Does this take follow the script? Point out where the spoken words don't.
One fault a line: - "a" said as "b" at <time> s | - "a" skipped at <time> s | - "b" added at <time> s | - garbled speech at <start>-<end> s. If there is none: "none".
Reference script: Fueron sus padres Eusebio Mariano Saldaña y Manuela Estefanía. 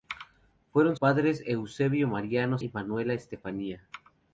- "sus" skipped at 0.9 s
- "Saldaña" skipped at 2.6 s